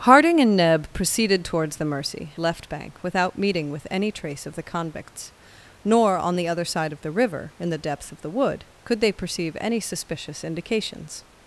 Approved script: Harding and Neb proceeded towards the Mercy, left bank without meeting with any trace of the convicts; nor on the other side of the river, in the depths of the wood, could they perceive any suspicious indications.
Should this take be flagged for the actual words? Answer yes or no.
no